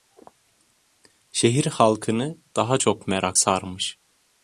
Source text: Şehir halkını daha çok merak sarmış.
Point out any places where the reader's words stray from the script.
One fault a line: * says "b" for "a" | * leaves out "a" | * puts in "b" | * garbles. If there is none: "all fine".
all fine